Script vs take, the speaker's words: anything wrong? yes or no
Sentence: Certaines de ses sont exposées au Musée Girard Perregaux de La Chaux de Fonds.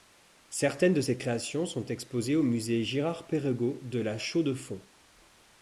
yes